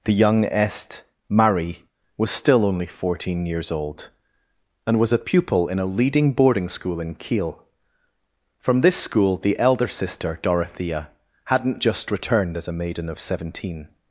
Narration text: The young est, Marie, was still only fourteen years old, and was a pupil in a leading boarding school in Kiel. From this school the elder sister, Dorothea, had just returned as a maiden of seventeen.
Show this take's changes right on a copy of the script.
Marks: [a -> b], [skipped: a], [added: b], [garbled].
The young est, Marie, was still only fourteen years old, and was a pupil in a leading boarding school in Kiel. From this school the elder sister, Dorothea, [had -> hadn't] just returned as a maiden of seventeen.